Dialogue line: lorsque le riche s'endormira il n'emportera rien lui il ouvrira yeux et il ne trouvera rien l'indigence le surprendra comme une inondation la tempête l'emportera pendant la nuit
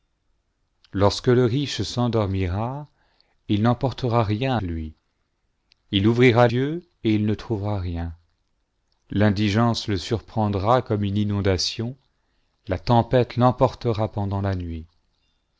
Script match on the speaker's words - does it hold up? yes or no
yes